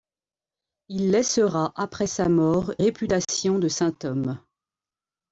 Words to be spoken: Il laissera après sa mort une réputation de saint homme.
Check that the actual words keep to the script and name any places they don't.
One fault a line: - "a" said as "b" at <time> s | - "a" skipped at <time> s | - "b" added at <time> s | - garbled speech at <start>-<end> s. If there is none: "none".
- "une" skipped at 2.7 s